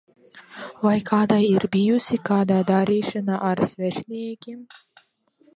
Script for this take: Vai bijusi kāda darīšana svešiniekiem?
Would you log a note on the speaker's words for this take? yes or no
yes